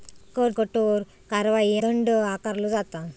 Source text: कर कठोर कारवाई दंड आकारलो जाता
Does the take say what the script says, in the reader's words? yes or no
yes